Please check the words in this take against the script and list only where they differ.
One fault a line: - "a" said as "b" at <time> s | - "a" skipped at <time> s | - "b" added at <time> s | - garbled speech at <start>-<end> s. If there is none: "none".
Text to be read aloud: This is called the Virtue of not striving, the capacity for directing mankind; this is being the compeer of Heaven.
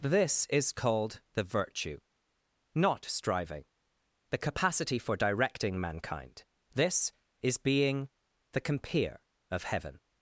- "of" skipped at 2.0 s